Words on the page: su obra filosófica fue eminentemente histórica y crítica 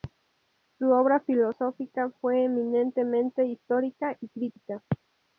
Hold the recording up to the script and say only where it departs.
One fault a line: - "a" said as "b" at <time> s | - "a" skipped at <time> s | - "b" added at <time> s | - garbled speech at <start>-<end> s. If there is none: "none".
none